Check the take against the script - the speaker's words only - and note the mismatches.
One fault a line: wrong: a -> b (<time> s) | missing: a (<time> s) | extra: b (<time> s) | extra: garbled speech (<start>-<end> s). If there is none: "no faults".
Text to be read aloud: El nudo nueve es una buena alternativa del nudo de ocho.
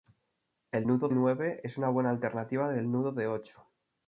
no faults